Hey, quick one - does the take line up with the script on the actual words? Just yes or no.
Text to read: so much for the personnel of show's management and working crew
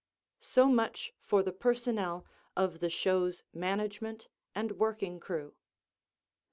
no